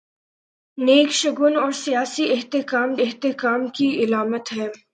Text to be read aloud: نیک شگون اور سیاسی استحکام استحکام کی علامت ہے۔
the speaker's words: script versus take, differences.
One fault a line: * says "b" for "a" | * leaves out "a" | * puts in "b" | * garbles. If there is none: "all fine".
all fine